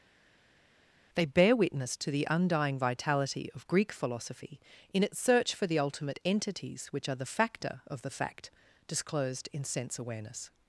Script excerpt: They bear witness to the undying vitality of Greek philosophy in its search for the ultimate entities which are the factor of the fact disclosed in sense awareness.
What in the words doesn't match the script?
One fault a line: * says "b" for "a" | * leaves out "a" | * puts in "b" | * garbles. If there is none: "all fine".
all fine